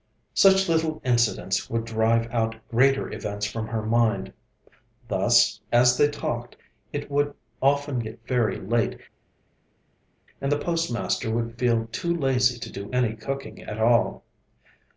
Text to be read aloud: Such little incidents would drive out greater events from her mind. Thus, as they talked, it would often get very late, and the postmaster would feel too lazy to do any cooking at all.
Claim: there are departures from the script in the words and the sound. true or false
false